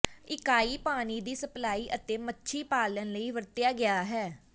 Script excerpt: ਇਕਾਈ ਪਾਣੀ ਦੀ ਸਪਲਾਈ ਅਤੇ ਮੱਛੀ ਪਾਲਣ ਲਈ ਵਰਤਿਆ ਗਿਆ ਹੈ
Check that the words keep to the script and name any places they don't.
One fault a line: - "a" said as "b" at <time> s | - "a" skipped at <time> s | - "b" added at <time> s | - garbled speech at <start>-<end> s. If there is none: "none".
none